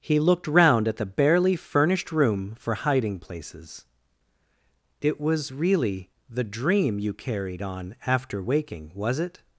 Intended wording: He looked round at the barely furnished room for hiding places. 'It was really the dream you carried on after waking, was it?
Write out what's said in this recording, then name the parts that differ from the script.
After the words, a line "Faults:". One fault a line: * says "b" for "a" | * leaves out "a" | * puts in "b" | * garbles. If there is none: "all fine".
He looked round at the barely furnished room for hiding places. 'It was really the dream you carried on after waking, was it?
Faults:
all fine